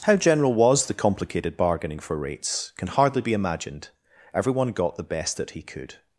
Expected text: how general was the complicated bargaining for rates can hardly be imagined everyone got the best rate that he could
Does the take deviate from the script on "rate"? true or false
true